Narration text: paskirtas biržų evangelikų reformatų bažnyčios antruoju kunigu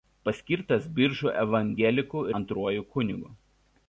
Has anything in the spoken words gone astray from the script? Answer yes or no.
yes